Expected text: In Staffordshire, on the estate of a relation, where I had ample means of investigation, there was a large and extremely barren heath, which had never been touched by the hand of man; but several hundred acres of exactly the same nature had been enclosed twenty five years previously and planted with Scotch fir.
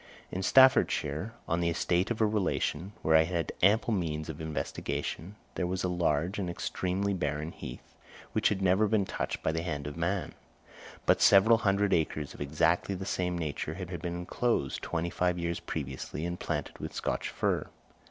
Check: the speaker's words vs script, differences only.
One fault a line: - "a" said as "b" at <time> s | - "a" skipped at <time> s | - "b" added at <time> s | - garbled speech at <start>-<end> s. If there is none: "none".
- "had" added at 13.9 s